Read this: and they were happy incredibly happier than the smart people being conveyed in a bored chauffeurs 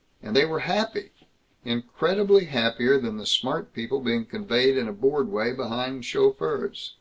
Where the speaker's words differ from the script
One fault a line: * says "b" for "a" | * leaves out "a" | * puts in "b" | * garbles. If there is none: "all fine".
* puts in "way behind"